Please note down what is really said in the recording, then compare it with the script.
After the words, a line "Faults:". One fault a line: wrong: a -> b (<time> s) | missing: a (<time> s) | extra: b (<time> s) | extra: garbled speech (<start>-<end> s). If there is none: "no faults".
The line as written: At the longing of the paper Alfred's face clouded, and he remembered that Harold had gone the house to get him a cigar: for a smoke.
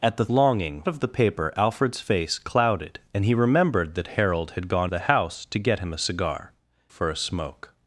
At the longing of the paper Alfred's face clouded, and he remembered that Harold had gone the house to get him a cigar: for a smoke.
Faults:
no faults